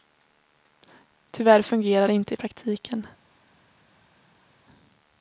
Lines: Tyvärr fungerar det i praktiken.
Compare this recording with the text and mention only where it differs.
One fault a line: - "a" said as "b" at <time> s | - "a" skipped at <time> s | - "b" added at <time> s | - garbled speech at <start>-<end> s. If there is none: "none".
- "inte" added at 2.1 s